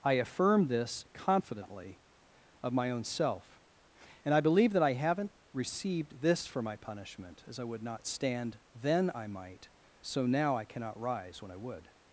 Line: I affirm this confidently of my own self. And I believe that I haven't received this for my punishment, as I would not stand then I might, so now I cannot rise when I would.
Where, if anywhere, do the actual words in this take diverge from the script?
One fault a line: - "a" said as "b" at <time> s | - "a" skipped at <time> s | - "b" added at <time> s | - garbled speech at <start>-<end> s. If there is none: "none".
none